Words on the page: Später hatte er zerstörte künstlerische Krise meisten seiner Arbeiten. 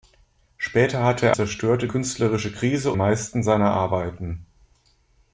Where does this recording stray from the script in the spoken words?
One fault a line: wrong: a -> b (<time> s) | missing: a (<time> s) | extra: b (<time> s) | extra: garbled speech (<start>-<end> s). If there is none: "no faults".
no faults